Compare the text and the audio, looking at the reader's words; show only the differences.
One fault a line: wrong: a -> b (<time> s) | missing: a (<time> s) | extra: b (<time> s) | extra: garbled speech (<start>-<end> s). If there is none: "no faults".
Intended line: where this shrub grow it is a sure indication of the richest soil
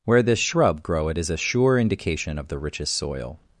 no faults